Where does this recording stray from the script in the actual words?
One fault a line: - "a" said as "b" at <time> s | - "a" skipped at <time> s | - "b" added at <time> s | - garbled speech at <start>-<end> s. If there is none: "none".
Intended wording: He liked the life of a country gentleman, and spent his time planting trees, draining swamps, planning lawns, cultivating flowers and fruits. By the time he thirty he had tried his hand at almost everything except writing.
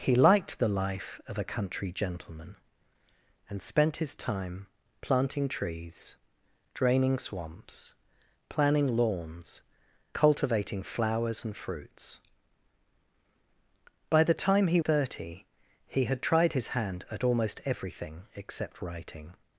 none